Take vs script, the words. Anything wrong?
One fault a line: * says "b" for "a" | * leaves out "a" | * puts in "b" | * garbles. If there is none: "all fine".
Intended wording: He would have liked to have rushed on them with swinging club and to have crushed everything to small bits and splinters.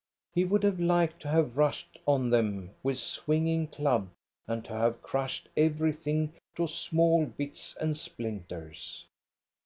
all fine